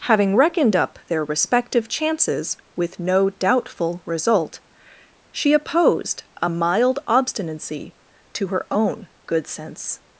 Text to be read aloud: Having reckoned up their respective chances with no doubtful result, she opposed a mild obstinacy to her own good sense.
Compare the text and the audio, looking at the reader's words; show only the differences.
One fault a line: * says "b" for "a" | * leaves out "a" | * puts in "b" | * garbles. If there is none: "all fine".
all fine